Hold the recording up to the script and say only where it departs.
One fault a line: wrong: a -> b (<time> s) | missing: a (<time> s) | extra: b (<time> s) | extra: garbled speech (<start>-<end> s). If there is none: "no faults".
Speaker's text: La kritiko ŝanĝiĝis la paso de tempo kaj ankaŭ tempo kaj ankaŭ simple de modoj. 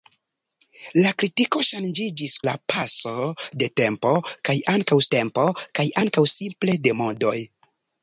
no faults